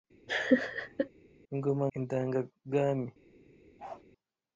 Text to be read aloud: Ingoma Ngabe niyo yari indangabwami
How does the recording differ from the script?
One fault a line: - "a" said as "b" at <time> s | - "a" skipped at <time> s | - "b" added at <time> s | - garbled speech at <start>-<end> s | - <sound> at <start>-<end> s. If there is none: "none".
- laugh at 0.3-1.1 s
- "Ngabe niyo yari" skipped at 1.8 s
- bark at 3.8-4.0 s